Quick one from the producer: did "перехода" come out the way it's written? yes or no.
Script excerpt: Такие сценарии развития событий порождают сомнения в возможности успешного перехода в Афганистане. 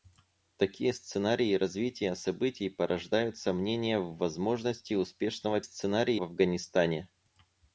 no